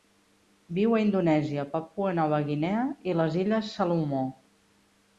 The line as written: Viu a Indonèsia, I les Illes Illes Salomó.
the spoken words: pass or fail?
fail